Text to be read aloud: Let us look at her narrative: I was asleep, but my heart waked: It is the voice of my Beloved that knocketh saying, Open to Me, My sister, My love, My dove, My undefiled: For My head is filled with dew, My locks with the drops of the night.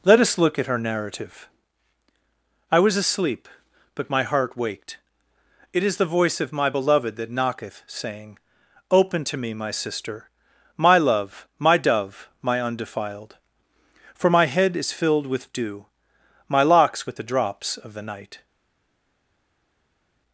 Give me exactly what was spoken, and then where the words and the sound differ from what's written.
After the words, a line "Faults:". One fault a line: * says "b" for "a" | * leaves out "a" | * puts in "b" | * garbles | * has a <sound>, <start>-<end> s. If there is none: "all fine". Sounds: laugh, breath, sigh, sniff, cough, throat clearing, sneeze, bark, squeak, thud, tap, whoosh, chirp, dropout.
Let us look at her narrative: I was asleep, but my heart waked: It is the voice of my Beloved that knocketh saying, Open to Me, My sister, My love, My dove, My undefiled: For My head is filled with dew, My locks with the drops of the night.
Faults:
all fine